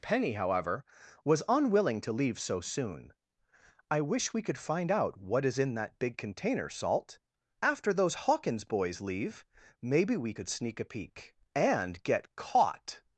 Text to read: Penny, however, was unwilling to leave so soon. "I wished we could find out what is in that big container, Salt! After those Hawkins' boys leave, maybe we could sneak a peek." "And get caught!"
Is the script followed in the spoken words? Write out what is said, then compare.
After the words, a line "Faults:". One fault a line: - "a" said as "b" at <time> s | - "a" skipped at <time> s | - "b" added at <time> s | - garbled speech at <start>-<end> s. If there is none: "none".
Penny, however, was unwilling to leave so soon. "I wish we could find out what is in that big container, Salt! After those Hawkins' boys leave, maybe we could sneak a peek." "And get caught!"
Faults:
- "wished" said as "wish" at 4.0 s